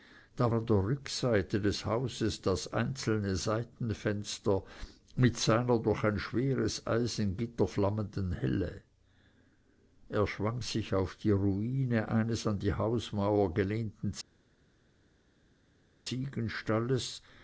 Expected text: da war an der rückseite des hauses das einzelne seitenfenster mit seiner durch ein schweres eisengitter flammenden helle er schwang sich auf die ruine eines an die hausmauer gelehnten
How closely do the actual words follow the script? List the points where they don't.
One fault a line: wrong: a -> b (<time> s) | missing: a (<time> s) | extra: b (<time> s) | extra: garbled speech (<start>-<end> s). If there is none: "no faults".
missing: war (0.5 s)